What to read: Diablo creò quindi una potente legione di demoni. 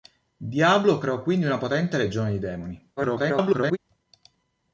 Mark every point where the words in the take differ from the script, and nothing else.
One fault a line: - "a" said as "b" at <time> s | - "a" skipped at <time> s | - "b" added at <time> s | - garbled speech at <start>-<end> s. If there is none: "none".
- garbled speech at 3.0-3.8 s